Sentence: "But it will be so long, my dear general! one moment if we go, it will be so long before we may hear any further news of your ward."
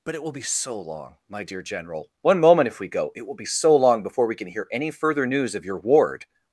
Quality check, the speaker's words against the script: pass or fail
fail